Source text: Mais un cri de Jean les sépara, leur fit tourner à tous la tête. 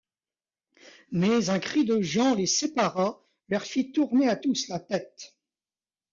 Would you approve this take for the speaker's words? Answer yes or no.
yes